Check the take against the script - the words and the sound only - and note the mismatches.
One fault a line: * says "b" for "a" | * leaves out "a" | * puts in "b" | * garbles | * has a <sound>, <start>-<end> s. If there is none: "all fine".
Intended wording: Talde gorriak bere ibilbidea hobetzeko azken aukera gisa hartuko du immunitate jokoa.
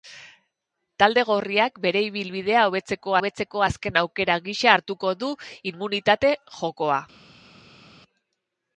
* puts in "hobetzeko"